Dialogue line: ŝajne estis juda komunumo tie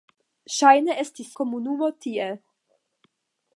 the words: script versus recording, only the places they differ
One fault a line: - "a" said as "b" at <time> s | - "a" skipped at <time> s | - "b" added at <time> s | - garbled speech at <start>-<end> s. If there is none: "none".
- "juda" skipped at 1.3 s